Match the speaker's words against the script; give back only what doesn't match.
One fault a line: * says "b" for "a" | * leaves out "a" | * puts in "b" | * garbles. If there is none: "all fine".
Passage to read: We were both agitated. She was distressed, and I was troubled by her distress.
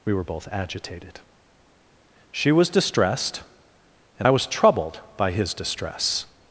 * says "his" for "her"